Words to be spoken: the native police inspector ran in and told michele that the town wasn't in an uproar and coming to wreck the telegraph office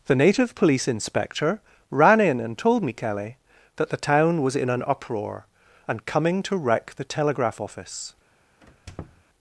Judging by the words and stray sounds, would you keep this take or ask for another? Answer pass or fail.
fail